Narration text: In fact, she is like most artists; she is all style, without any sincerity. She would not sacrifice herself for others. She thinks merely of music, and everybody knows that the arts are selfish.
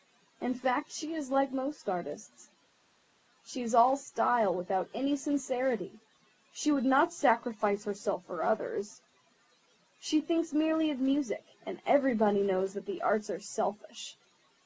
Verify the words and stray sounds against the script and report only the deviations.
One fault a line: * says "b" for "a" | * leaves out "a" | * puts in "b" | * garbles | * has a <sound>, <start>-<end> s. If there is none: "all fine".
all fine